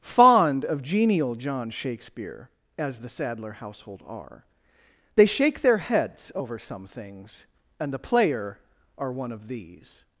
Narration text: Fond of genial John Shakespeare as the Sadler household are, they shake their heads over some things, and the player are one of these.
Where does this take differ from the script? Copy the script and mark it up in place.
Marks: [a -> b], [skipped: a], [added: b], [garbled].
Fond of genial John Shakespeare as the Sadler household are, they shake their heads over some things, and the player are one of these.